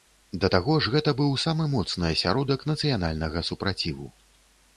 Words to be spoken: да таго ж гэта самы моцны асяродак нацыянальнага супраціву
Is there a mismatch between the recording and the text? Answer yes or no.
yes